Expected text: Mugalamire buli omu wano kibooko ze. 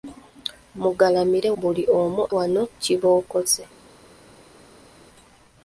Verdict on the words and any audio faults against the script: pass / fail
pass